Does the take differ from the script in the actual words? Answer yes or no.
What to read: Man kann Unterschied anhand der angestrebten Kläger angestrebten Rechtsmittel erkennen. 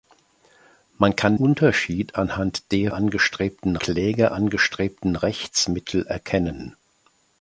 no